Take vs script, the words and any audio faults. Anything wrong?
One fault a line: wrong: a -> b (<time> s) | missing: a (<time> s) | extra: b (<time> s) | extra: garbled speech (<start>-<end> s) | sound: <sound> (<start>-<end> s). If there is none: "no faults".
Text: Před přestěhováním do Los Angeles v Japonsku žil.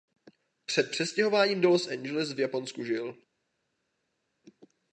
no faults